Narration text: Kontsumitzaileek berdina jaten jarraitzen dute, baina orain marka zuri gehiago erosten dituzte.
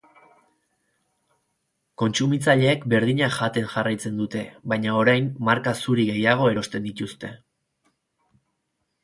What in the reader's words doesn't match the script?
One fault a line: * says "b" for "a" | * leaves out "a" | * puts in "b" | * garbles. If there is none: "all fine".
all fine